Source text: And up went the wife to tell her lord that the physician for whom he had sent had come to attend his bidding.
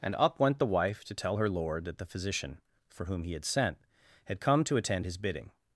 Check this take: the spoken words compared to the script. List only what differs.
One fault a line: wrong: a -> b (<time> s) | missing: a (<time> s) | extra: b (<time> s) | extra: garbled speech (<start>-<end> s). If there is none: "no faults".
no faults